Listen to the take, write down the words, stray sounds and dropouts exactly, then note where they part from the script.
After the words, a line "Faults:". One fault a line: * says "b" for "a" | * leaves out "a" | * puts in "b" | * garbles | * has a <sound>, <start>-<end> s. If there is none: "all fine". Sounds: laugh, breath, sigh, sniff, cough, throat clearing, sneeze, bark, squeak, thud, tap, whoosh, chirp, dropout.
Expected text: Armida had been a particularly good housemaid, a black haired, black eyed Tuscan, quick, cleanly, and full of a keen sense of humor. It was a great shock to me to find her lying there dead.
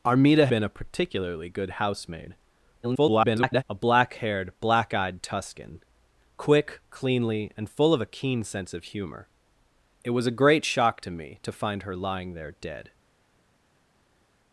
Armida been a particularly good housemaid, [garbled] a black haired, black eyed Tuscan, quick, cleanly, and full of a keen sense of humor. It was a great shock to me to find her lying there dead.
Faults:
* leaves out "had"
* garbles